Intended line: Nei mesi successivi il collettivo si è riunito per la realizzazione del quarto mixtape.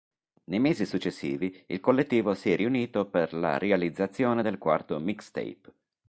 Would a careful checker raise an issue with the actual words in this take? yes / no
no